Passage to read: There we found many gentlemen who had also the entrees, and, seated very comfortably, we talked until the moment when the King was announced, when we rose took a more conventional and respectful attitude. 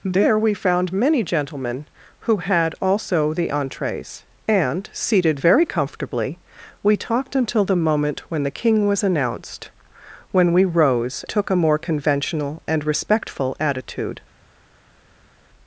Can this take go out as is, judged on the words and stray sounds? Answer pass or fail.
pass